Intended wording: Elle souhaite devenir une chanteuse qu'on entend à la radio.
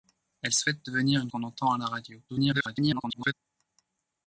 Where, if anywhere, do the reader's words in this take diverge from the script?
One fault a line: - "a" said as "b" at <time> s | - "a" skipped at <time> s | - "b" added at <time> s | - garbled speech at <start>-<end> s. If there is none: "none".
- "chanteuse" skipped at 1.3 s
- garbled speech at 2.3-3.3 s